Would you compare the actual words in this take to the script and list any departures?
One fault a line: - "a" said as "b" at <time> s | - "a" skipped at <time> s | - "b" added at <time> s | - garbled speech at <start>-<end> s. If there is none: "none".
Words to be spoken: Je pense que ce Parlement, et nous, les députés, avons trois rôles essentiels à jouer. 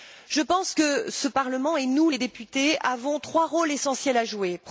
none